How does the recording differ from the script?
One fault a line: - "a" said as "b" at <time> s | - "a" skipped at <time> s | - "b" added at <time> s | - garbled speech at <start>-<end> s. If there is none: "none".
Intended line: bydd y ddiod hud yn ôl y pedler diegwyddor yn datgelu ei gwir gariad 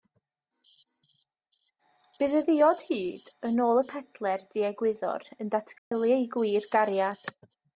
none